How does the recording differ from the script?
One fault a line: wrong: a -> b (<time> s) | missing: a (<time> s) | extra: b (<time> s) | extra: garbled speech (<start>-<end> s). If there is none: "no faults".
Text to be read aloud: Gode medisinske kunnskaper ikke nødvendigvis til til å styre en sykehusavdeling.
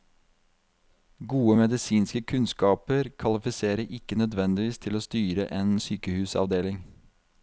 extra: kvalifiserer (3.2 s)
missing: til (4.9 s)